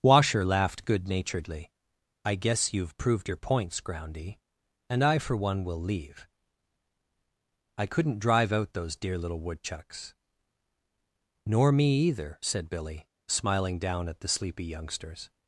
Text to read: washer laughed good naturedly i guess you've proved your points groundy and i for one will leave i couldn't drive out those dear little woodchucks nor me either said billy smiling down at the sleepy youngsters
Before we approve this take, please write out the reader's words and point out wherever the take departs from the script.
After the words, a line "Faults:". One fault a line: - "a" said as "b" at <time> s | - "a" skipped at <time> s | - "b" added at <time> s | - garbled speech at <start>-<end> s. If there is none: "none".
washer laughed good naturedly i guess you've proved your points groundy and i for one will leave i couldn't drive out those dear little woodchucks nor me either said billy smiling down at the sleepy youngsters
Faults:
none